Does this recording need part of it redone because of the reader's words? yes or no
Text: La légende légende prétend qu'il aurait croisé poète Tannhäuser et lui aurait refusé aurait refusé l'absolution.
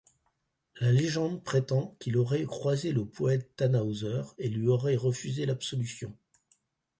yes